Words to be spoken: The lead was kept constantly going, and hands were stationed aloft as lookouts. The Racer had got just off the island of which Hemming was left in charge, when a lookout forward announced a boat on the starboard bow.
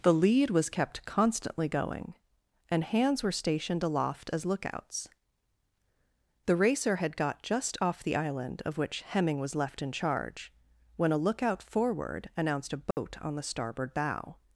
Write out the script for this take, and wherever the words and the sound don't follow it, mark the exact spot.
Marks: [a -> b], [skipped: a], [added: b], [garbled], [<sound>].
The lead was kept constantly going, and hands were stationed aloft as lookouts. The Racer had got just off the island of which Hemming was left in charge, when a lookout forward announced a boat [dropout] on the starboard bow.